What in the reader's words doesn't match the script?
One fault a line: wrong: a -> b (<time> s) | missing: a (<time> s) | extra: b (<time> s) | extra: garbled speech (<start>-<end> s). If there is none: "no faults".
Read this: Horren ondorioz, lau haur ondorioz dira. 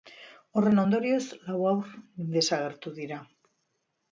wrong: ondorioz -> desagertu (2.4 s)